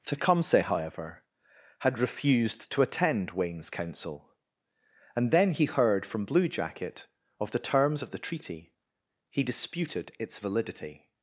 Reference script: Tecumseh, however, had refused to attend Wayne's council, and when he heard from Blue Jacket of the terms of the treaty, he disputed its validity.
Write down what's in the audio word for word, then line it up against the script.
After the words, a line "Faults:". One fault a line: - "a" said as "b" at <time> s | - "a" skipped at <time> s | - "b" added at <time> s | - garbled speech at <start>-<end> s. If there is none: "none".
Tecumseh, however, had refused to attend Wayne's council, and then he heard from Blue Jacket of the terms of the treaty, he disputed its validity.
Faults:
- "when" said as "then" at 5.3 s